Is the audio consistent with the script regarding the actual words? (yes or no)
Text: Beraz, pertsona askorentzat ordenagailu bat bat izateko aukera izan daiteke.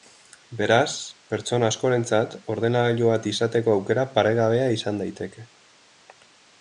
no